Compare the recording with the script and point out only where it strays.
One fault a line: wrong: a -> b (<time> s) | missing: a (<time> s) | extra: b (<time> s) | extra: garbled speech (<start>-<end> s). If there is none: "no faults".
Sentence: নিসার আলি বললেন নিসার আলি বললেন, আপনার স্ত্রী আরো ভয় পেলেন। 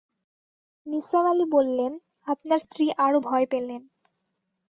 missing: নিসার আলি বললেন (1.9 s)